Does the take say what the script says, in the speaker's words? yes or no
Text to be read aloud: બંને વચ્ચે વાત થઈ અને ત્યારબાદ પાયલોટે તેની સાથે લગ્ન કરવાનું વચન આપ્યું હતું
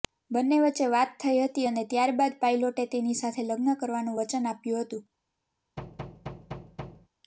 no